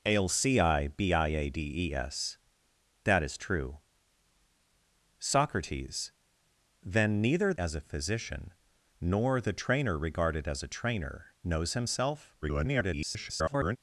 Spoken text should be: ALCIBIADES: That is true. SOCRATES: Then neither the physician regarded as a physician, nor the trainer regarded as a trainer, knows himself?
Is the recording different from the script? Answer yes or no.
yes